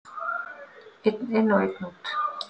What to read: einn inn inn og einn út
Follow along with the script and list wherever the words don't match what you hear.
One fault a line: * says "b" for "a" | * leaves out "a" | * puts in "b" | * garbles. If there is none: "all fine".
* leaves out "inn"